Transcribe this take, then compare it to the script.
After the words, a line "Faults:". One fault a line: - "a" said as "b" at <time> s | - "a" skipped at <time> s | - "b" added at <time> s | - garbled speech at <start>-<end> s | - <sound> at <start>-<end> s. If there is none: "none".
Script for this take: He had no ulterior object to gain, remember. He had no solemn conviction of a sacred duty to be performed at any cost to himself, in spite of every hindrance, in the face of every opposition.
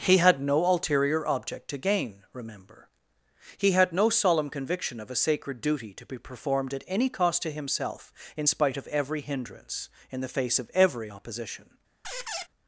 He had no ulterior object to gain, remember. He had no solemn conviction of a sacred duty to be performed at any cost to himself, in spite of every hindrance, in the face of every opposition.
Faults:
- squeak at 12.0-12.5 s